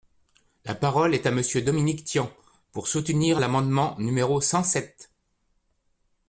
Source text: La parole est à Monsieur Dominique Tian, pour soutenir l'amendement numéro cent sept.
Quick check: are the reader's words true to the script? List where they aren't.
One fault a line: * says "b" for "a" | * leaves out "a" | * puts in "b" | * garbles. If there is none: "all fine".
all fine